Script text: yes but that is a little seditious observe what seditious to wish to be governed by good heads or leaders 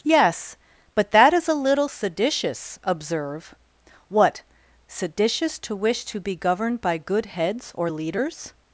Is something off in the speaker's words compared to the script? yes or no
no